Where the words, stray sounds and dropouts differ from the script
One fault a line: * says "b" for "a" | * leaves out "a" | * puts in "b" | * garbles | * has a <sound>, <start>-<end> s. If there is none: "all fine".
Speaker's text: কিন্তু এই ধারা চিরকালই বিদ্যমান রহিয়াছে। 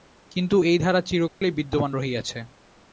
* has a dropout, 1.3-1.4 s